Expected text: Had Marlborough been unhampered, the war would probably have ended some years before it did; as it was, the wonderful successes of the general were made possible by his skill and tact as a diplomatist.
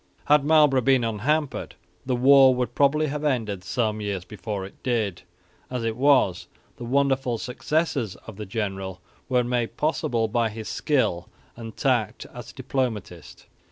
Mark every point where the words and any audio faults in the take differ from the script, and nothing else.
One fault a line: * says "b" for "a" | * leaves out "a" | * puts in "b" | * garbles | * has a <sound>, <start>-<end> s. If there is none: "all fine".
all fine